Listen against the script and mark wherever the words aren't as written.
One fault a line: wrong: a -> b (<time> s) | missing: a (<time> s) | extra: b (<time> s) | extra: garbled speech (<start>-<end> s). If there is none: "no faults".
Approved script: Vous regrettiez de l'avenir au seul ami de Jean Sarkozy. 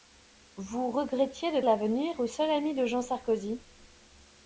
no faults